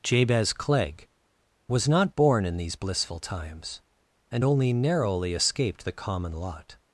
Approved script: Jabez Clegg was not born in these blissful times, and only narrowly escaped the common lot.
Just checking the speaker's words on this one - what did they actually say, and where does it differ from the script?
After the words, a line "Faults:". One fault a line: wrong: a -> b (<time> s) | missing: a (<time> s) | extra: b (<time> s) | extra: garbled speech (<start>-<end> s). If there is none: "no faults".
Jabez Clegg was not born in these blissful times, and only narrowly escaped the common lot.
Faults:
no faults